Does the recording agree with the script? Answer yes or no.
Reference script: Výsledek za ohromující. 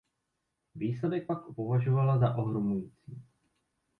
no